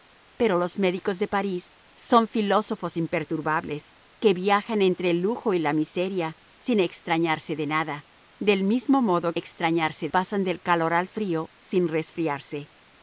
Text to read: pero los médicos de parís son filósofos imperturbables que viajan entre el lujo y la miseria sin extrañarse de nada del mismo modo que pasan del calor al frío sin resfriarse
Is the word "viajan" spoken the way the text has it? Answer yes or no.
yes